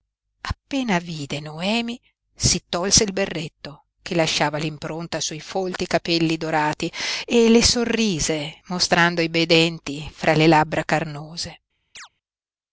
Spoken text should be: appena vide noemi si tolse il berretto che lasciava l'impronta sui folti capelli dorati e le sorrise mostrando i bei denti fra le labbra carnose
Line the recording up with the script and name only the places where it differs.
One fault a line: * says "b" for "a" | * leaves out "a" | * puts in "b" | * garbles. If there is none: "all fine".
all fine